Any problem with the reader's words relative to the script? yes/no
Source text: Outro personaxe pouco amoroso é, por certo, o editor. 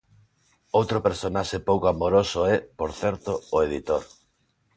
no